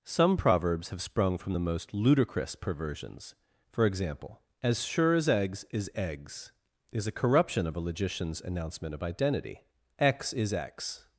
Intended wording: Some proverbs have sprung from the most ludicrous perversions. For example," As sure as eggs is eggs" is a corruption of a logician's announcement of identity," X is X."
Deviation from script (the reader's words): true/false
false